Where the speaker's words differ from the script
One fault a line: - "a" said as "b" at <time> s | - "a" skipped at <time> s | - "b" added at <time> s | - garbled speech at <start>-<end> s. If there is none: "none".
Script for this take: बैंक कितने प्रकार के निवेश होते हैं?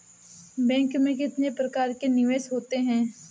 - "में" added at 0.9 s